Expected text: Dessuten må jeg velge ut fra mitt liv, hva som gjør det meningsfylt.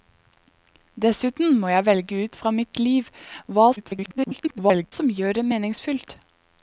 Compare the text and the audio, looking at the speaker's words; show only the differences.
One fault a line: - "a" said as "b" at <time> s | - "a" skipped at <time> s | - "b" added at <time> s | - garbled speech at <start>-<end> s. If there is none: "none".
- garbled speech at 3.8-4.9 s